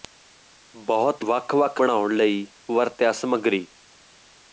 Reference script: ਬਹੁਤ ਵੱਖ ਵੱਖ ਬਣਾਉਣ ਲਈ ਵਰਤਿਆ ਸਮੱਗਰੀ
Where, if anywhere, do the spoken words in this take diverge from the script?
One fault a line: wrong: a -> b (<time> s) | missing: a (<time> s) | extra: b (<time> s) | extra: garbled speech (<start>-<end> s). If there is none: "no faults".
no faults